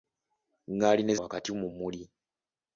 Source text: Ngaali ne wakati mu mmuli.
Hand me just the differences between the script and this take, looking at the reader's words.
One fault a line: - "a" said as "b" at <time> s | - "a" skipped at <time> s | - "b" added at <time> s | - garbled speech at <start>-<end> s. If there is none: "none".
none